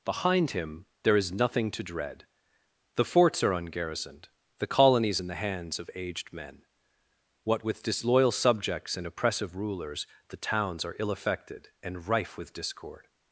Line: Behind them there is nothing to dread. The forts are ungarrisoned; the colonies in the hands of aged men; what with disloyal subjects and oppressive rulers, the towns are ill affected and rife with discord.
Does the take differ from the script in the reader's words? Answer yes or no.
yes